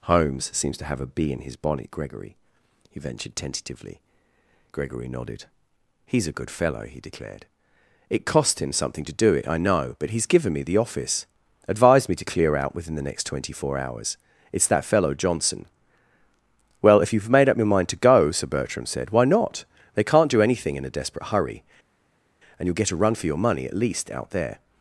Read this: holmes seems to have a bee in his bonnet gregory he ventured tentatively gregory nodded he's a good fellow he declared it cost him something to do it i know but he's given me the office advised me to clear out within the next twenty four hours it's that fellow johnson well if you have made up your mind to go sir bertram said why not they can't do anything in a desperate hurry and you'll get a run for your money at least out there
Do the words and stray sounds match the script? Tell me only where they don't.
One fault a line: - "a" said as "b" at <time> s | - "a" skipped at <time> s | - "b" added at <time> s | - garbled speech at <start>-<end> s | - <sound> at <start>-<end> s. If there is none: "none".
none